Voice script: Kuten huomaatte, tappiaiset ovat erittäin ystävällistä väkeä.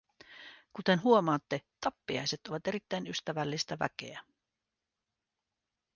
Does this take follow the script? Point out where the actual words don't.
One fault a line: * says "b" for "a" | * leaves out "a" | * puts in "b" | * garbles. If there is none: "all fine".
all fine